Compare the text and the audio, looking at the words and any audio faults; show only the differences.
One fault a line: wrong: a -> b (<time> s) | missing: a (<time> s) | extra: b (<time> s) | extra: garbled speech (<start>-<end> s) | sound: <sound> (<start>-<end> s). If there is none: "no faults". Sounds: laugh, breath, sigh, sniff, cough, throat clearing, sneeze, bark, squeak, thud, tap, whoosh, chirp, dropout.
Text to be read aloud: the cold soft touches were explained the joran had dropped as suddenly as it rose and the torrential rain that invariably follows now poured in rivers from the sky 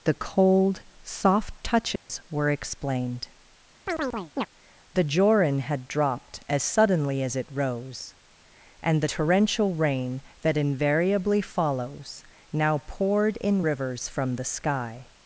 sound: dropout (2.0-2.1 s)
sound: chirp (3.9-4.5 s)